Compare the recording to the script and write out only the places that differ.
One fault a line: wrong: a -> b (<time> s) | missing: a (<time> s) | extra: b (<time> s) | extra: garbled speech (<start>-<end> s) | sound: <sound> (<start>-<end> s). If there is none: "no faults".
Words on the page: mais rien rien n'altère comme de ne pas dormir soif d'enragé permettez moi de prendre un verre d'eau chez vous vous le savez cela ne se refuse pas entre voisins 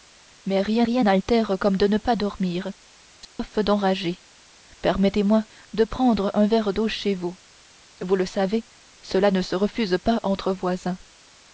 sound: dropout (3.2-3.4 s)